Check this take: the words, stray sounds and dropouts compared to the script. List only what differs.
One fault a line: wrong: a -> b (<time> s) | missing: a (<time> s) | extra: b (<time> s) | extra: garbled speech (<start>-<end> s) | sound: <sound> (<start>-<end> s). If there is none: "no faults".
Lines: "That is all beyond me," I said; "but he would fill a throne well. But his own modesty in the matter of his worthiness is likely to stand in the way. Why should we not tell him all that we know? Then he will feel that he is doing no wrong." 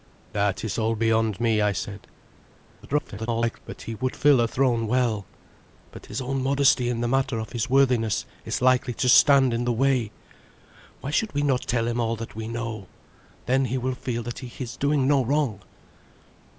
extra: garbled speech (2.8-3.6 s)